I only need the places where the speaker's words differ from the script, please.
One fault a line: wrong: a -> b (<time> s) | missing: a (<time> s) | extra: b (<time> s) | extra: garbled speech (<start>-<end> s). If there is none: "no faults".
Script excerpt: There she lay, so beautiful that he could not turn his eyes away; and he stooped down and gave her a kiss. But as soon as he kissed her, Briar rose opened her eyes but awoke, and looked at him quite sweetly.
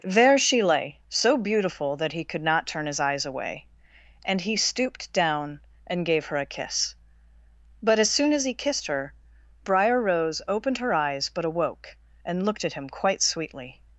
no faults